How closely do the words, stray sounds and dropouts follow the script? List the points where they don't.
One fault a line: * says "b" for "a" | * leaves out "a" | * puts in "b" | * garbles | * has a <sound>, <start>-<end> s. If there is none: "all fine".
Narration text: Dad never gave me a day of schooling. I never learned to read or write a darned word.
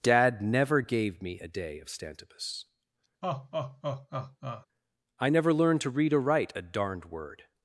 * says "stantibus" for "schooling"
* has a laugh, 3.2-4.7 s